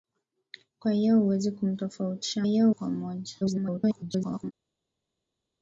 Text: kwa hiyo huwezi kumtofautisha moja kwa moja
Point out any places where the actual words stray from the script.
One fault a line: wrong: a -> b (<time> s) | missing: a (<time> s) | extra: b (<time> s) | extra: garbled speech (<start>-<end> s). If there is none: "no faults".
wrong: moja -> hiyo (2.4 s)
extra: garbled speech (3.4-4.5 s)